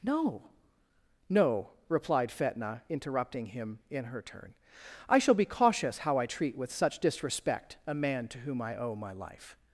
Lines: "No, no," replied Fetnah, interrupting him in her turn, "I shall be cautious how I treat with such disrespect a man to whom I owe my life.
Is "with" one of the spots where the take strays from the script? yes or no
no